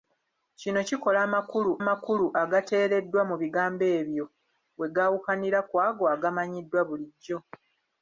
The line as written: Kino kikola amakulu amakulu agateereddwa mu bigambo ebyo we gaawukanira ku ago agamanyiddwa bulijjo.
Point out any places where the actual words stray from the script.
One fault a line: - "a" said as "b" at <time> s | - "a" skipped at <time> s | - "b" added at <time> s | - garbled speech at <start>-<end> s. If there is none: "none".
none